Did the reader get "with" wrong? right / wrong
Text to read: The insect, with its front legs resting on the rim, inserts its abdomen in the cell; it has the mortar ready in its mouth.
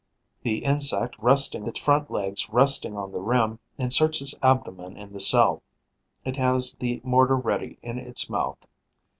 wrong